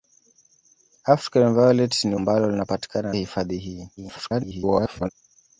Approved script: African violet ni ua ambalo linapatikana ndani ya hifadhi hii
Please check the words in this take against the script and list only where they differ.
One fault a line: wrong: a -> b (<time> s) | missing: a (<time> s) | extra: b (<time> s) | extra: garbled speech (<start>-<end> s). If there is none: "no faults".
missing: ua (2.1 s)
missing: ndani (3.1 s)
extra: garbled speech (4.0-5.1 s)